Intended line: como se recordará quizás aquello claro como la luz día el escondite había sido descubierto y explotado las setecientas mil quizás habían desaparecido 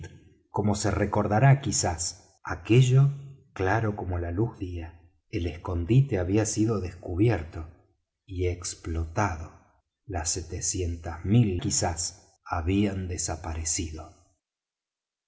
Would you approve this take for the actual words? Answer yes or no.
yes